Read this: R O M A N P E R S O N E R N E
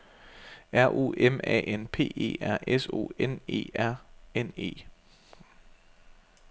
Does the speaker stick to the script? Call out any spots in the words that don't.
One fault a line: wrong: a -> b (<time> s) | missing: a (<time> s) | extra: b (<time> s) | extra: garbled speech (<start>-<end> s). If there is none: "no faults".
no faults